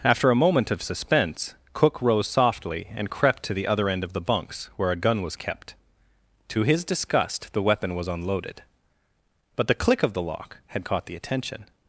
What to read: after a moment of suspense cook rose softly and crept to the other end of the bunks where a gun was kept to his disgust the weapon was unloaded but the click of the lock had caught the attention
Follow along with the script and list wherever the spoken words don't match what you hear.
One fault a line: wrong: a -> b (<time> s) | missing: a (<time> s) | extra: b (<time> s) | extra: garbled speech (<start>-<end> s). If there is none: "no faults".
no faults